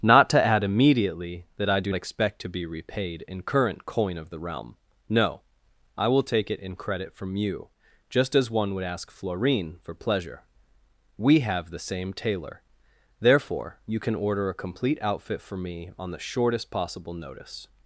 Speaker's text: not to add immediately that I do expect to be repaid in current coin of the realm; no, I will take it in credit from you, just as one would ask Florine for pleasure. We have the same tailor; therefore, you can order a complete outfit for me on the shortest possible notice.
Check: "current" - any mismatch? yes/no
no